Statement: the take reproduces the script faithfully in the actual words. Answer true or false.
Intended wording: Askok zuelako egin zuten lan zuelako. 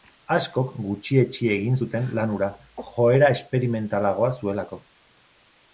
false